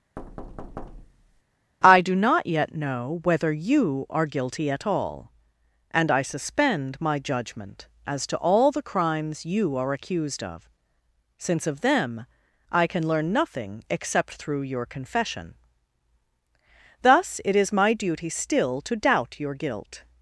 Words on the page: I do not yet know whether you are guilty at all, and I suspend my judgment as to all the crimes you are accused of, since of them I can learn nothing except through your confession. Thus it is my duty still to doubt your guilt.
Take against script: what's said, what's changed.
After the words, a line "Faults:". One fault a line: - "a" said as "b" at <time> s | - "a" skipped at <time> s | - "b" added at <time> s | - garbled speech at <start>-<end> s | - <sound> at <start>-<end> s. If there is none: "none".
I do not yet know whether you are guilty at all, and I suspend my judgment as to all the crimes you are accused of, since of them I can learn nothing except through your confession. Thus it is my duty still to doubt your guilt.
Faults:
- thud at 0.2-1.4 s